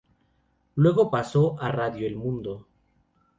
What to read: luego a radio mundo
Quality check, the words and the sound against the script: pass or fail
fail